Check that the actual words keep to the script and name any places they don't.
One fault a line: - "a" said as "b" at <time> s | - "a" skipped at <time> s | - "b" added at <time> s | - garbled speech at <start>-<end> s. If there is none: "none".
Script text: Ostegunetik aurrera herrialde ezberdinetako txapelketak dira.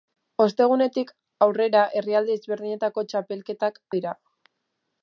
none